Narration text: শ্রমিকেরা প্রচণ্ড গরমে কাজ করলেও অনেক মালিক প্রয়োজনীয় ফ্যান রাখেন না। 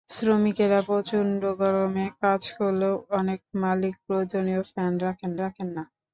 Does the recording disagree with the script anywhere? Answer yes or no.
yes